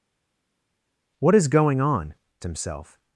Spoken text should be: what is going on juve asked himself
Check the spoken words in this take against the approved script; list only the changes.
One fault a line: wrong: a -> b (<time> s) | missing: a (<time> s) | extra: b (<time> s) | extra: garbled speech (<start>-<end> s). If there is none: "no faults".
missing: juve asked (2.1 s)